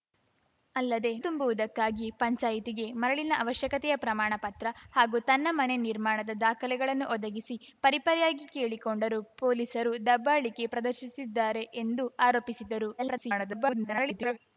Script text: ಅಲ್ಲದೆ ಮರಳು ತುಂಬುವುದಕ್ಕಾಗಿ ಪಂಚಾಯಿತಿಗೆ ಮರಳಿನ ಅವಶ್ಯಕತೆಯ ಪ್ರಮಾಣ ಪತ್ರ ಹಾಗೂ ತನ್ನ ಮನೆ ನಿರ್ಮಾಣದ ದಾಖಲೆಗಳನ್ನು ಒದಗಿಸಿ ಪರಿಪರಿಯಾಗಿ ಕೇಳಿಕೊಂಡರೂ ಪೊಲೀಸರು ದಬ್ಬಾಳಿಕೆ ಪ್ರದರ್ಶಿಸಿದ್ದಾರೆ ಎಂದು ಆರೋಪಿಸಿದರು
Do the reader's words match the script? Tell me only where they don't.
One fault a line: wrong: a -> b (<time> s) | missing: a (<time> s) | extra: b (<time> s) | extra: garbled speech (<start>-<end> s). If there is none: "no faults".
missing: ಮರಳು (1.1 s)
extra: garbled speech (13.0-14.4 s)